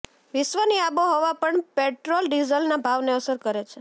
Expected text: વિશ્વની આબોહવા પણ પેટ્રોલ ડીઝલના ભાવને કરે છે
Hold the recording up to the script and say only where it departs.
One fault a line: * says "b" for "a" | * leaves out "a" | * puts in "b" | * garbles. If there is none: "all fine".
* puts in "અસર"